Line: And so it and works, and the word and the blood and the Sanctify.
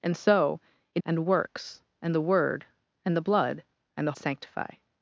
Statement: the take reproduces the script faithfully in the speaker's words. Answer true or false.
true